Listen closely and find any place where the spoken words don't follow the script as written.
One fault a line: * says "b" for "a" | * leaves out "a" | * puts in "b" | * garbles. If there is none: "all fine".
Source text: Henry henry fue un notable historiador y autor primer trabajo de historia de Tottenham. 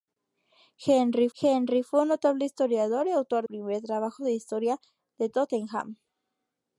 all fine